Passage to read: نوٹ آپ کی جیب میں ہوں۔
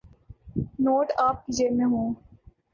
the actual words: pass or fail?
pass